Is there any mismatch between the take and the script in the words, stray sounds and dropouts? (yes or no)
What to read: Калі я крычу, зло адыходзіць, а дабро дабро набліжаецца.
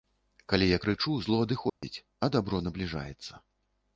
yes